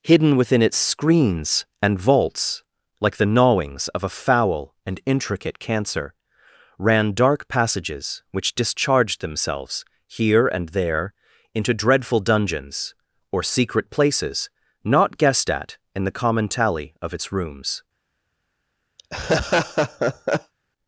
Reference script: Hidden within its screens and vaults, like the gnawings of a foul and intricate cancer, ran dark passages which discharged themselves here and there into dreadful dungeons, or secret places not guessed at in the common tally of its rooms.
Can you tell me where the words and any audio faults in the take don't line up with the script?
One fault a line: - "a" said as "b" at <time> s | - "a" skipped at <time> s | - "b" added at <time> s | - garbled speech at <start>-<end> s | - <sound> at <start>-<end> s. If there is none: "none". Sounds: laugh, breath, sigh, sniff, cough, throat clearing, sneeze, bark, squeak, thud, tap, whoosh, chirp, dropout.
- laugh at 19.0-20.5 s